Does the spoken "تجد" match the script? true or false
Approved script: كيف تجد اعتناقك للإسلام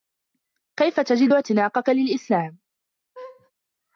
true